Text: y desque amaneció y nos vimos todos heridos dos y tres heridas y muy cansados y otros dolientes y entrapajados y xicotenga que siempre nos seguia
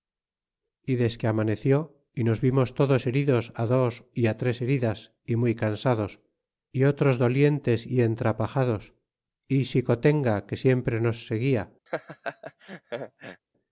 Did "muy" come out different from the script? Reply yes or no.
no